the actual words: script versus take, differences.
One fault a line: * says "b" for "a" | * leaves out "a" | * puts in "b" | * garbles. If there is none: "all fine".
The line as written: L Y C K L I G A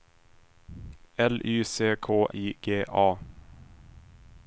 * leaves out "L"